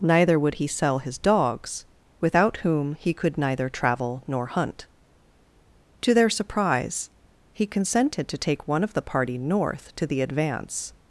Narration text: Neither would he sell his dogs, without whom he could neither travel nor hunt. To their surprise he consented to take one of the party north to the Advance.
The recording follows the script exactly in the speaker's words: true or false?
true